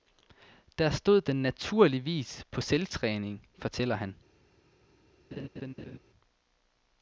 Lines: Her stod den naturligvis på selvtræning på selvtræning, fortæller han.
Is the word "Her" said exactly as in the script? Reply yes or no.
no